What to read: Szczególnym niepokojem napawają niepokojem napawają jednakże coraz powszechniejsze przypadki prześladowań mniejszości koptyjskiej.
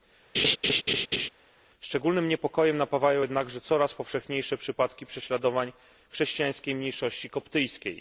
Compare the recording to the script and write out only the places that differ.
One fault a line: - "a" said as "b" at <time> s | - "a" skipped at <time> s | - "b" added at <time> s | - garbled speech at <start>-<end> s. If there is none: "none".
- "niepokojem napawają" skipped at 3.2 s
- "chrześcijańskiej" added at 6.1 s